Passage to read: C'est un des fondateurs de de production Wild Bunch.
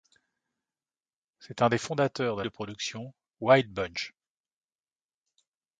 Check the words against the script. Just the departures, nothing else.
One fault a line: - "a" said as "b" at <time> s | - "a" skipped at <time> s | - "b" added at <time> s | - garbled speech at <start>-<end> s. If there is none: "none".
none